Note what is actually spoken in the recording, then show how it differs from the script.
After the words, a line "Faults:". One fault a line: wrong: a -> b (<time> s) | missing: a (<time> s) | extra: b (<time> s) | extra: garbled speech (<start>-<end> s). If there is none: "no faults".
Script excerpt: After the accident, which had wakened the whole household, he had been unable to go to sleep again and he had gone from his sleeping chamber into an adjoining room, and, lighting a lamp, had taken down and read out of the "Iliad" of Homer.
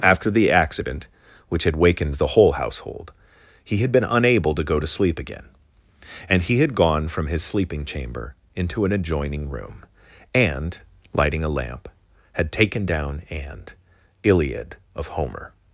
After the accident, which had wakened the whole household, he had been unable to go to sleep again and he had gone from his sleeping chamber into an adjoining room, and, lighting a lamp, had taken down and "Iliad" of Homer.
Faults:
missing: read out of the (13.7 s)